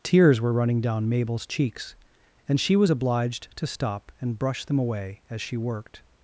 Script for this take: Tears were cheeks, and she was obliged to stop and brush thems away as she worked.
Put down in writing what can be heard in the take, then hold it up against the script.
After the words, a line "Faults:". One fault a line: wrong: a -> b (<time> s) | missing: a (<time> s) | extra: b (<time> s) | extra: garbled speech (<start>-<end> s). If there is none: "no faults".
Tears were running down Mabel's cheeks, and she was obliged to stop and brush them away as she worked.
Faults:
extra: running down Mabel's (0.5 s)
wrong: thems -> them (4.6 s)